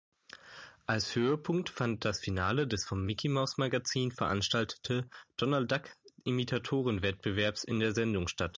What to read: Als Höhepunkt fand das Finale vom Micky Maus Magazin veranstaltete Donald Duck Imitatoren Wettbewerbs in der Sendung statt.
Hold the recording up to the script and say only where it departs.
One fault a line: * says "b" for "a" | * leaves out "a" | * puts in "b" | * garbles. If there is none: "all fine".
* puts in "des"